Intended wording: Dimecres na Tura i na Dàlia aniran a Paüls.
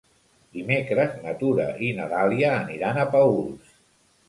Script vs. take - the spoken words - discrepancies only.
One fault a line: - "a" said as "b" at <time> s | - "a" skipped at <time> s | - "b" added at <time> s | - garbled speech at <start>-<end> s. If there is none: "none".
none